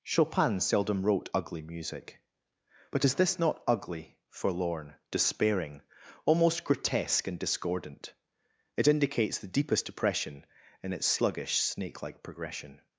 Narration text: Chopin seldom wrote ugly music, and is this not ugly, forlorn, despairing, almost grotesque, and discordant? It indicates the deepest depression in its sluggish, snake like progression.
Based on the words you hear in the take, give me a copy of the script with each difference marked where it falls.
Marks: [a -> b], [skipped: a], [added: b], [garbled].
Chopin seldom wrote ugly music, [and -> but] is this not ugly, forlorn, despairing, almost grotesque, and discordant? It indicates the deepest depression in its sluggish, snake like progression.